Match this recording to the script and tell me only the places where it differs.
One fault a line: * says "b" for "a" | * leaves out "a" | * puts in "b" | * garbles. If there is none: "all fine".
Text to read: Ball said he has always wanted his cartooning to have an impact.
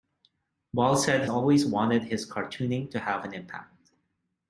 * leaves out "he has"